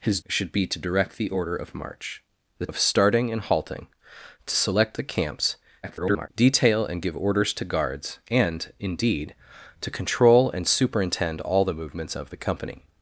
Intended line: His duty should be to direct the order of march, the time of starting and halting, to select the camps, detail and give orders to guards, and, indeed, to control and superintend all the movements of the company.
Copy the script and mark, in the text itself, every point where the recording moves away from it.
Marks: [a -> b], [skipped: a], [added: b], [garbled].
His [skipped: duty] should be to direct the order of march, the [skipped: time] of starting and halting, to select the camps, [garbled] detail and give orders to guards, and, indeed, to control and superintend all the movements of the company.